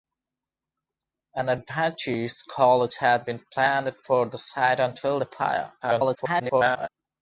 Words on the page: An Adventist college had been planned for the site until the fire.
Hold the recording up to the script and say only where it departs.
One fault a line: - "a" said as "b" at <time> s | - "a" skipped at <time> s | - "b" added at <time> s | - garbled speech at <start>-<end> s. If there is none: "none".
- garbled speech at 5.8-6.9 s